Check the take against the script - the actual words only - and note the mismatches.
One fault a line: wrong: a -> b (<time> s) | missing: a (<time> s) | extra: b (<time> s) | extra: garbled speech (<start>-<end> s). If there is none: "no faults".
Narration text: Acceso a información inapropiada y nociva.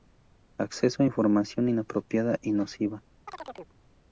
no faults